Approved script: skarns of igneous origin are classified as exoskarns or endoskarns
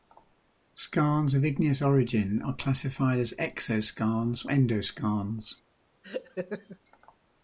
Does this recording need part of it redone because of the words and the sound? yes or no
yes